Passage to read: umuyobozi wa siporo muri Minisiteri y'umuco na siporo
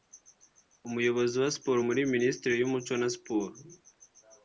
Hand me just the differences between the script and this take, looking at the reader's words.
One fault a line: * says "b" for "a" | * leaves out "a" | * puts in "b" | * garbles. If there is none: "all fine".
all fine